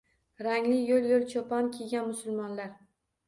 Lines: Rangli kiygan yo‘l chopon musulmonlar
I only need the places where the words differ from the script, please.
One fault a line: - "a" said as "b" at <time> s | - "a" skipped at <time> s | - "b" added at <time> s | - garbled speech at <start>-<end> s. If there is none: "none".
- "kiygan" said as "yo‘l" at 0.9 s
- "kiygan" added at 1.8 s